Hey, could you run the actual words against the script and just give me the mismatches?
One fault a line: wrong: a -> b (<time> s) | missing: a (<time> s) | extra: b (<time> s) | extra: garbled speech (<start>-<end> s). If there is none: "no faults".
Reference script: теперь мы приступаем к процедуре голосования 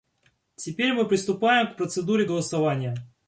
no faults